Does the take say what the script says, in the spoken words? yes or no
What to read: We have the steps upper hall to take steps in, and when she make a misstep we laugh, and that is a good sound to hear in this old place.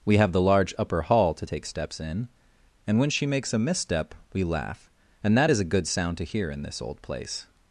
no